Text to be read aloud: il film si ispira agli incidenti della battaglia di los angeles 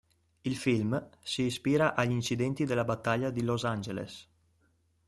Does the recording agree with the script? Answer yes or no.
yes